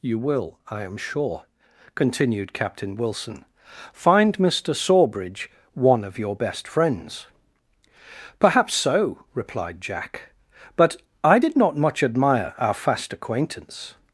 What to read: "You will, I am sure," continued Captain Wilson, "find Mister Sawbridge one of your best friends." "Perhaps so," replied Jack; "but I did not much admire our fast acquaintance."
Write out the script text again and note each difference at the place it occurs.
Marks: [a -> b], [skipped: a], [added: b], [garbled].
"You will, I am sure," continued Captain Wilson, "find Mister Sawbridge one of your best friends." "Perhaps so," replied Jack; "but I did not much admire our fast acquaintance."